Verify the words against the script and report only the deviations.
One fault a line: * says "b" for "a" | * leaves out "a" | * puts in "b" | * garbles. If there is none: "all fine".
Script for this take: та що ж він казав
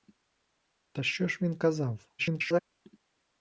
* garbles